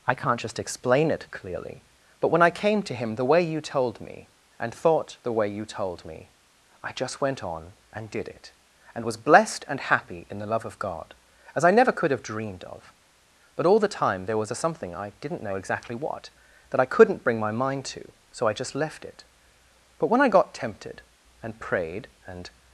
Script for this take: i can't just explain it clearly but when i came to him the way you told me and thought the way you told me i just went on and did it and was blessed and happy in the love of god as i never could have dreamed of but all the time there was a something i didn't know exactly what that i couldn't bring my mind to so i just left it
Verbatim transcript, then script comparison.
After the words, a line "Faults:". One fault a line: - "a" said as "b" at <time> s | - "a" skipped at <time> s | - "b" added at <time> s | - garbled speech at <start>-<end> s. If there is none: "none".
i can't just explain it clearly but when i came to him the way you told me and thought the way you told me i just went on and did it and was blessed and happy in the love of god as i never could have dreamed of but all the time there was a something i didn't know exactly what that i couldn't bring my mind to so i just left it but when i got tempted and prayed and
Faults:
- "but when i got tempted and prayed and" added at 20.0 s